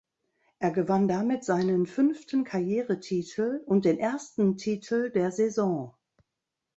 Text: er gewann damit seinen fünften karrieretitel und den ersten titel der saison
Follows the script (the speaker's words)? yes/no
yes